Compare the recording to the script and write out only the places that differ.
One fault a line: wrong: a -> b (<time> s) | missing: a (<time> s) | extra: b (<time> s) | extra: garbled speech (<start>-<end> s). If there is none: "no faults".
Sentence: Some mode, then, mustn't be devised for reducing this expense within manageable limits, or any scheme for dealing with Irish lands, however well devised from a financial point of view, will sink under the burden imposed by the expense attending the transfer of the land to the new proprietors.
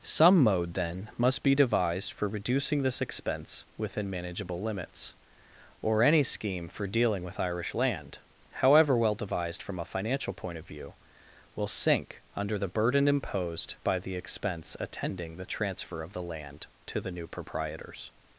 wrong: mustn't -> must (1.2 s)
wrong: lands -> land (7.8 s)